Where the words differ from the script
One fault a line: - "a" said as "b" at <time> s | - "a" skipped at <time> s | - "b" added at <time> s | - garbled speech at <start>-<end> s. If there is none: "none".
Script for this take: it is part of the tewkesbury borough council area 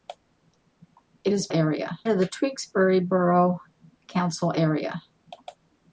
- "part" said as "area" at 1.5 s